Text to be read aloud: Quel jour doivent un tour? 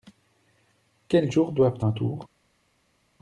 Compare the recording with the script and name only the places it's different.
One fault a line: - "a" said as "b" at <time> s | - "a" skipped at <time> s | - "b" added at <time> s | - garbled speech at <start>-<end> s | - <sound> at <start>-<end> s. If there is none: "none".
none